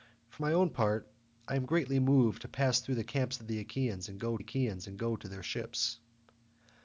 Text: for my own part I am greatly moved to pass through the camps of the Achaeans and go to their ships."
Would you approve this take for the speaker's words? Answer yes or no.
no